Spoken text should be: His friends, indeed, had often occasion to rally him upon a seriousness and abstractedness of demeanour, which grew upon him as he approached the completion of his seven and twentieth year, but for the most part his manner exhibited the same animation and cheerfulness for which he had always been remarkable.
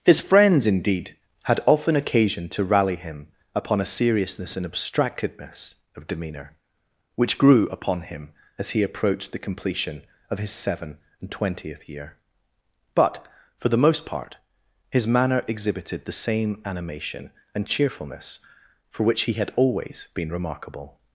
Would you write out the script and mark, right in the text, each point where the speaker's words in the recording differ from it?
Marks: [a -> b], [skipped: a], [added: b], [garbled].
His friends, indeed, had often occasion to rally him upon a seriousness and abstractedness of demeanour, which grew upon him as he approached the completion of his seven and twentieth year, but for the most part his manner exhibited the same animation and cheerfulness for which he had always been remarkable.